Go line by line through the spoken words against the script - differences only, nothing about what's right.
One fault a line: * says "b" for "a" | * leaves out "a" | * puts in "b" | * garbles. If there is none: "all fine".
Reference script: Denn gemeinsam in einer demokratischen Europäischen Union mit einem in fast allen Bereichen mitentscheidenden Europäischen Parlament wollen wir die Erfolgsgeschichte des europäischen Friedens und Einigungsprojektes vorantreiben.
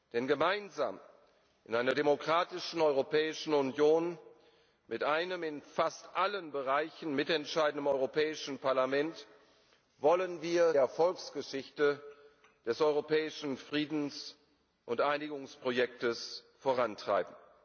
* leaves out "die"